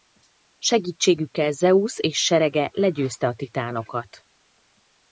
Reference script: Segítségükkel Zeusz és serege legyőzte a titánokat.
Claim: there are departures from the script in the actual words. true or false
false